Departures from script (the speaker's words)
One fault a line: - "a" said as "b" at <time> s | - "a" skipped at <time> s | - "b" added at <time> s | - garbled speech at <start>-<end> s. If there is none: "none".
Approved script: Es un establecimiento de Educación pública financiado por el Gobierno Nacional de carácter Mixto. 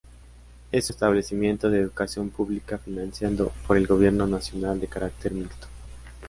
- "un" skipped at 0.9 s